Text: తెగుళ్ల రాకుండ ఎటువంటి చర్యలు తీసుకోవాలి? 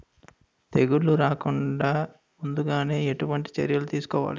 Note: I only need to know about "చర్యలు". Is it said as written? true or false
true